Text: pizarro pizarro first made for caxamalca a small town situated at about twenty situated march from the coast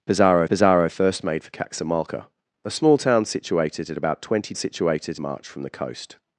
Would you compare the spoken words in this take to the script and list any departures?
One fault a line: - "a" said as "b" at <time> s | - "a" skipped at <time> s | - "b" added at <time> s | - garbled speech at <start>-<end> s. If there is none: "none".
none